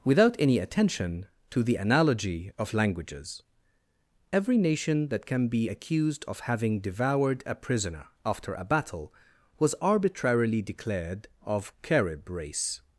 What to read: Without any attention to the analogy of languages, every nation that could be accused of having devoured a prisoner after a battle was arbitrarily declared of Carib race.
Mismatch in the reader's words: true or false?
true